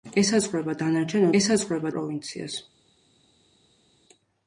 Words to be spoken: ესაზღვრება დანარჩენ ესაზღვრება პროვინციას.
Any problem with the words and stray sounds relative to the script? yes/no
no